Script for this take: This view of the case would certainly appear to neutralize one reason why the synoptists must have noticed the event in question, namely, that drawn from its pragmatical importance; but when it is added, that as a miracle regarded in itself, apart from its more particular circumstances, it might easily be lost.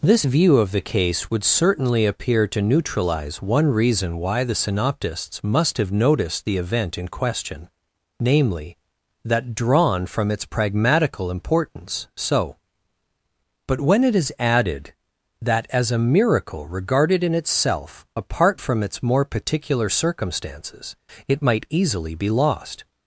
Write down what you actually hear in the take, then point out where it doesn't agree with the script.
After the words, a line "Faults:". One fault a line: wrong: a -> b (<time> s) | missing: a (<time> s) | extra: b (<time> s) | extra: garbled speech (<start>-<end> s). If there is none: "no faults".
This view of the case would certainly appear to neutralize one reason why the synoptists must have noticed the event in question, namely, that drawn from its pragmatical importance; so but when it is added, that as a miracle regarded in itself, apart from its more particular circumstances, it might easily be lost.
Faults:
extra: so (12.2 s)